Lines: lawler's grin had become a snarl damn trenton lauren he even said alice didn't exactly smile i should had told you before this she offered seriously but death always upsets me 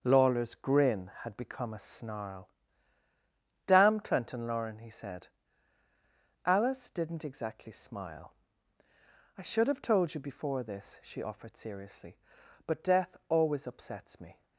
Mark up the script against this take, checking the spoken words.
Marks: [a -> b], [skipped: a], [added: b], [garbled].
lawler's grin had become a snarl damn trenton lauren he [skipped: even] said alice didn't exactly smile i should [had -> have] told you before this she offered seriously but death always upsets me